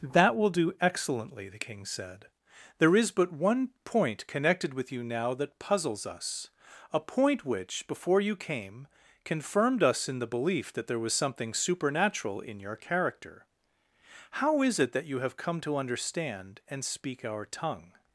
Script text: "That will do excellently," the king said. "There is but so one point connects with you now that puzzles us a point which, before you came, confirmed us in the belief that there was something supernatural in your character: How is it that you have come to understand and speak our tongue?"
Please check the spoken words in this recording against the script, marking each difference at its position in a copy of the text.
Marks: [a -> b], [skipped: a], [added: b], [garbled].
"That will do excellently," the king said. "There is but [skipped: so] one point [connects -> connected] with you now that puzzles us a point which, before you came, confirmed us in the belief that there was something supernatural in your character: How is it that you have come to understand and speak our tongue?"